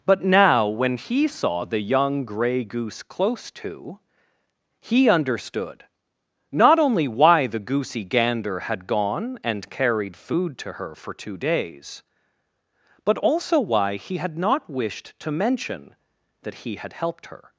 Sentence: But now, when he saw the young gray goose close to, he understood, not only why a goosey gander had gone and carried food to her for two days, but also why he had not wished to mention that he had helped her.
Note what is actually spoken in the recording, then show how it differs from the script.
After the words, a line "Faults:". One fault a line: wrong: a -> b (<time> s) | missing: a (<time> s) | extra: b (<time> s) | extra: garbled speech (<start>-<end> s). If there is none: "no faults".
But now, when he saw the young gray goose close to, he understood, not only why the goosey gander had gone and carried food to her for two days, but also why he had not wished to mention that he had helped her.
Faults:
wrong: a -> the (7.5 s)